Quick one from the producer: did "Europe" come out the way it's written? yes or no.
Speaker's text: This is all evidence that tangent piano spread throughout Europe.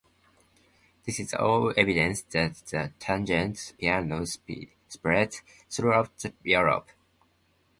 yes